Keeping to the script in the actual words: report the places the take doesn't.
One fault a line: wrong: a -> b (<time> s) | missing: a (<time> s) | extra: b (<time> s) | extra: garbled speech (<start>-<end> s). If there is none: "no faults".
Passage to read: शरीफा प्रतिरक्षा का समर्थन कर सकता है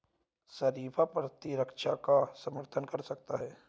no faults